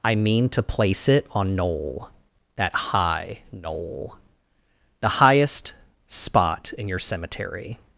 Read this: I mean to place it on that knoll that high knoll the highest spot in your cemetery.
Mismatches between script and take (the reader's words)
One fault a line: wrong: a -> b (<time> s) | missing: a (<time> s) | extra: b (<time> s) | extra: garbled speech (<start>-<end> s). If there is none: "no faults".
missing: that (1.6 s)